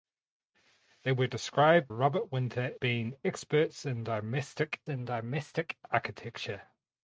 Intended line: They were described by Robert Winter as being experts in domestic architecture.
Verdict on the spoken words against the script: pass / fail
fail